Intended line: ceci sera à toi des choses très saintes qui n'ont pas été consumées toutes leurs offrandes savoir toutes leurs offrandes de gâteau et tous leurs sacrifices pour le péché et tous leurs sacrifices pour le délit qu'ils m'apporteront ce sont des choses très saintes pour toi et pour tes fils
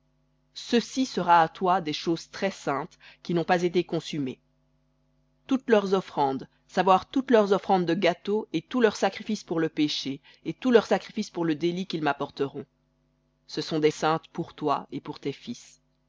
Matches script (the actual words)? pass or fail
fail